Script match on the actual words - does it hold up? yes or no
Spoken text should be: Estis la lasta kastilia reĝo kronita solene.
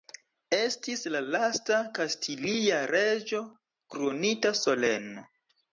yes